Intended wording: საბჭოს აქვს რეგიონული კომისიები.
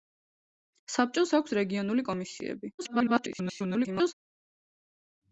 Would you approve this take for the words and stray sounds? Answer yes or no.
no